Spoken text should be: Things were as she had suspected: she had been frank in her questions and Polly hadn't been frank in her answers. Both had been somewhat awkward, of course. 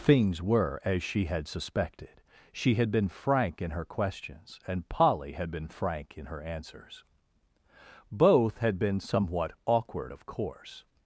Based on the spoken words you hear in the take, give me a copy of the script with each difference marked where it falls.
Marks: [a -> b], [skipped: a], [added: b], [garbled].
Things were as she had suspected: she had been frank in her questions and Polly [hadn't -> had] been frank in her answers. Both had been somewhat awkward, of course.